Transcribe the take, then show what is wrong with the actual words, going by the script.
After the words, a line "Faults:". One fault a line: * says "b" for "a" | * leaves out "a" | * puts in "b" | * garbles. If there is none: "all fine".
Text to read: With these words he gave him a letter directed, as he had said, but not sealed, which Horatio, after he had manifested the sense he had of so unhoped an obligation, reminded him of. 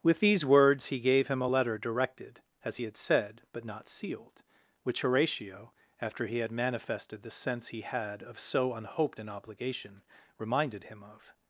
With these words he gave him a letter directed, as he had said, but not sealed, which Horatio, after he had manifested the sense he had of so unhoped an obligation, reminded him of.
Faults:
all fine